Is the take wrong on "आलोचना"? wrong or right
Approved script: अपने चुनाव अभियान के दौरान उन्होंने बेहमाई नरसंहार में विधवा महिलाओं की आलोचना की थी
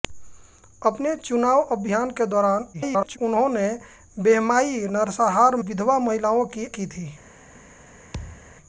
wrong